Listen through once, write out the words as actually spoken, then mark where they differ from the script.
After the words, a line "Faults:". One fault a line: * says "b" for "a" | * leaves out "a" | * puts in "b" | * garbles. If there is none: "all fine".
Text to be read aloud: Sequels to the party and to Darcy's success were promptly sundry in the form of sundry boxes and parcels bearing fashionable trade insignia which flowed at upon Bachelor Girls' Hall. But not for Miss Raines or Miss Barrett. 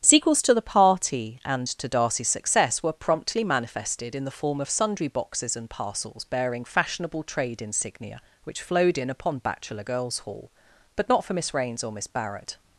Sequels to the party and to Darcy's success were promptly manifested in the form of sundry boxes and parcels bearing fashionable trade insignia which flowed in upon Bachelor Girls' Hall. But not for Miss Raines or Miss Barrett.
Faults:
* says "manifested" for "sundry"
* says "in" for "at"